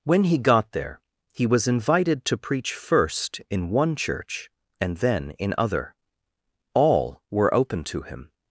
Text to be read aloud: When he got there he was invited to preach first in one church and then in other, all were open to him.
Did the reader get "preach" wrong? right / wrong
right